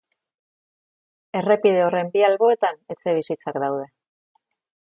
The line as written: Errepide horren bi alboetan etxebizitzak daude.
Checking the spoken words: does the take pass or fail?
pass